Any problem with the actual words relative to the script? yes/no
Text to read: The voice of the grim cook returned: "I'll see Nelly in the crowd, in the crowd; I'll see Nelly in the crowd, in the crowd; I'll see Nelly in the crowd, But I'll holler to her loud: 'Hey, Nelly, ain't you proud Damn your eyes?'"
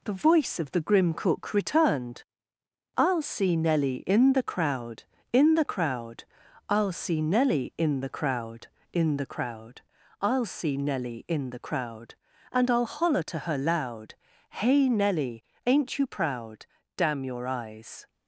yes